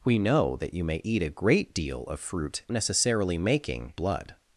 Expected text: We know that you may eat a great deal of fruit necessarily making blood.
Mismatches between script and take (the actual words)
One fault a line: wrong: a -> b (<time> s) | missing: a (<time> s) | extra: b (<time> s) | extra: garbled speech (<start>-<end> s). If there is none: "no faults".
no faults